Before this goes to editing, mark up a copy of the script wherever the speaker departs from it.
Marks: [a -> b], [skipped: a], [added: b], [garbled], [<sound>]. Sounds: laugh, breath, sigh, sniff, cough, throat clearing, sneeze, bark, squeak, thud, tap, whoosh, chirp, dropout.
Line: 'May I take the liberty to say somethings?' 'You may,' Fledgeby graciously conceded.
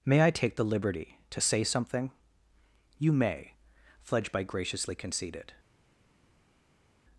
'May I take the liberty to say [somethings?' -> something] 'You may,' Fledgeby graciously conceded.